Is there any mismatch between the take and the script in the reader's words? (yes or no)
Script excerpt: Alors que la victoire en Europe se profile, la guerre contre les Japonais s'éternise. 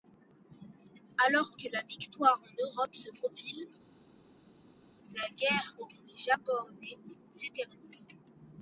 no